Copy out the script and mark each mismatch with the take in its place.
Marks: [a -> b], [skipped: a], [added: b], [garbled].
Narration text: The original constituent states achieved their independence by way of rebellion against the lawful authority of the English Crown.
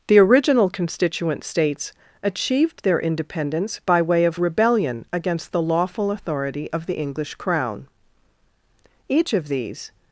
The original constituent states achieved their independence by way of rebellion against the lawful authority of the English Crown. [added: Each of these]